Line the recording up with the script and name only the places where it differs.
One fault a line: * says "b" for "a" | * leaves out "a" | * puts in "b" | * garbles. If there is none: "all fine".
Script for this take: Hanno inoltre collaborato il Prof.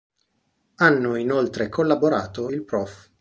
all fine